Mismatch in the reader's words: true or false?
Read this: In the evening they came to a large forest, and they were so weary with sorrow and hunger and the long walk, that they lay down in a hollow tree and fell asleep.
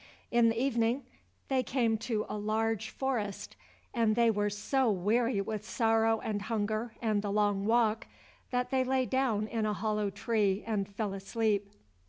false